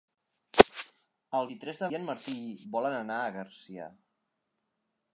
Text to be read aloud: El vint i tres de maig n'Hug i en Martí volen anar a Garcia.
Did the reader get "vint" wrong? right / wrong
wrong